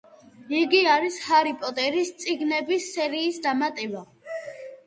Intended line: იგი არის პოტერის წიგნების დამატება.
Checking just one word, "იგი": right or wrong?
right